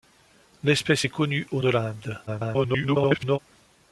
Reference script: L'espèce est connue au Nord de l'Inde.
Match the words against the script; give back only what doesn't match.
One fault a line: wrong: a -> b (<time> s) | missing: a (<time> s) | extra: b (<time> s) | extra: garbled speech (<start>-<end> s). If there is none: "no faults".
missing: Nord (1.6 s)
extra: garbled speech (2.3-3.4 s)